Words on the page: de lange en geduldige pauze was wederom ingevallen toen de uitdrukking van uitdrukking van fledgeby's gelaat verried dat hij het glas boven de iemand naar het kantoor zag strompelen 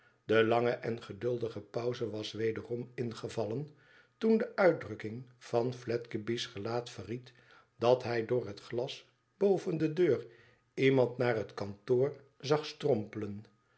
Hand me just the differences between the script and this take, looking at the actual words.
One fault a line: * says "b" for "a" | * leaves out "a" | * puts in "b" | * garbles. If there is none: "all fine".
* leaves out "uitdrukking van"
* puts in "door"
* puts in "deur"